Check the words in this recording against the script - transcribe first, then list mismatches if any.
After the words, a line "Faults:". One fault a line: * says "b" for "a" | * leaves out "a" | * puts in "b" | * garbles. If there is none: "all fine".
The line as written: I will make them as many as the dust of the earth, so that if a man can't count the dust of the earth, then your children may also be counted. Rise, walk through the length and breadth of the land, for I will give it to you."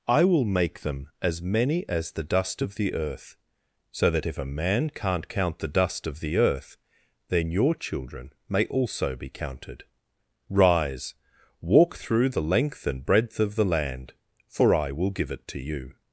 I will make them as many as the dust of the earth, so that if a man can't count the dust of the earth, then your children may also be counted. Rise, walk through the length and breadth of the land, for I will give it to you."
Faults:
all fine